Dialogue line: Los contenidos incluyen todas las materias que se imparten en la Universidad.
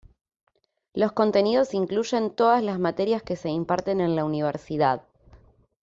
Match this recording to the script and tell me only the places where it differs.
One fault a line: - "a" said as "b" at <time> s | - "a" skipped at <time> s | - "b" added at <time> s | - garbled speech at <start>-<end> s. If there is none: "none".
none